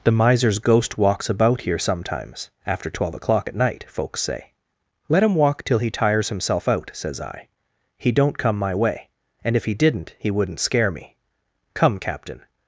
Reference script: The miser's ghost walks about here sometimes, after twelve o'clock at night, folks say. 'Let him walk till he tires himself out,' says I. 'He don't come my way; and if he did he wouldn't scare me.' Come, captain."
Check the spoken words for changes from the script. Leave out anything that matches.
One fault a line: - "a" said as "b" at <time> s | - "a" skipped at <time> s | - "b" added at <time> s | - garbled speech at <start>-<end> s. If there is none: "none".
- "did" said as "didn't" at 9.7 s